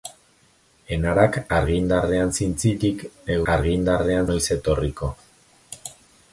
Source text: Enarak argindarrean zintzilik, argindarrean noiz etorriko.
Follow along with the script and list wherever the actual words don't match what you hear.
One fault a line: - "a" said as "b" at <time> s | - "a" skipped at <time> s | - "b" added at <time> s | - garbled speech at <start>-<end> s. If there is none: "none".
none